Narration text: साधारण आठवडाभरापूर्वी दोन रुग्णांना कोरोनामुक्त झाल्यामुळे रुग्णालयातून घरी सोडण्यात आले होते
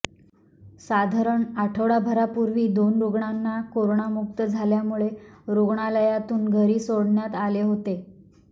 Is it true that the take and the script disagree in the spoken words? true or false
false